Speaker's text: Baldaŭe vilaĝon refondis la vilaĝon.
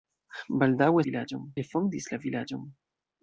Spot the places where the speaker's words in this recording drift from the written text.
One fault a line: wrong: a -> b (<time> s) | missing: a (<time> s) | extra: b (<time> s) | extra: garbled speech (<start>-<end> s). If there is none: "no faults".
no faults